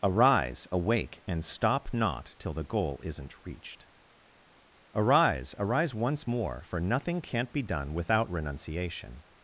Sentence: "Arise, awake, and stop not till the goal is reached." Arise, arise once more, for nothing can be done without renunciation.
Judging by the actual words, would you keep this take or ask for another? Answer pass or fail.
fail